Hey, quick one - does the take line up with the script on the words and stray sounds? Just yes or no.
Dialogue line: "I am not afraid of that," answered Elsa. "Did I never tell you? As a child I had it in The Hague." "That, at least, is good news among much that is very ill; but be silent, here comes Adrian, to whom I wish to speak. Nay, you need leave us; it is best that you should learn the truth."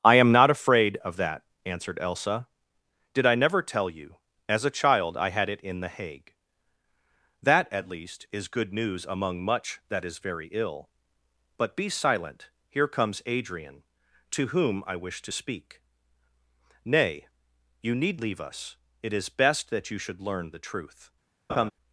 no